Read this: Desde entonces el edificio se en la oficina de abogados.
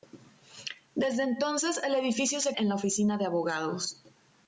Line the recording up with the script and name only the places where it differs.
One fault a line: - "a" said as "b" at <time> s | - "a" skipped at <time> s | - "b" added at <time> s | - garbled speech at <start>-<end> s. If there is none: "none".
none